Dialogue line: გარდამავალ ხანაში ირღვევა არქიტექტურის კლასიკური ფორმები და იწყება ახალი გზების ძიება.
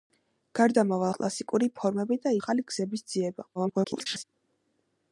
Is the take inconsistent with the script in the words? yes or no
yes